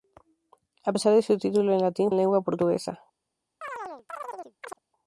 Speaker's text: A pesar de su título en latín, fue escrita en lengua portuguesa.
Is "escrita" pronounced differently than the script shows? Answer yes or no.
yes